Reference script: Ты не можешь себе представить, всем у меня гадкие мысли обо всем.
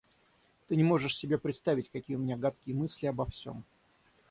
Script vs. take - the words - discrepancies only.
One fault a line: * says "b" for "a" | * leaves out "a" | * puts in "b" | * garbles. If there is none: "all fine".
* says "какие" for "всем"